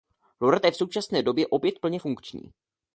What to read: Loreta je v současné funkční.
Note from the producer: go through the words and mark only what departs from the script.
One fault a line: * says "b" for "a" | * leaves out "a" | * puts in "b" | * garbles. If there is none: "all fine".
* puts in "době opět plně"